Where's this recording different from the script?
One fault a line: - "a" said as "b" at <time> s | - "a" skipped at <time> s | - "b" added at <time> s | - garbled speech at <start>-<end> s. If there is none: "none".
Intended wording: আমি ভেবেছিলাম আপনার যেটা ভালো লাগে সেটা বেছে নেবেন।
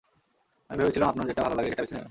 none